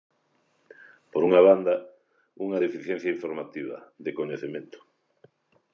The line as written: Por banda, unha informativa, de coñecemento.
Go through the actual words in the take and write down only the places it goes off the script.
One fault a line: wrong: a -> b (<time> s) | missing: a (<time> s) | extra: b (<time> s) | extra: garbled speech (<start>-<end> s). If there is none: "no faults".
extra: unha (1.3 s)
extra: deficiencia (2.6 s)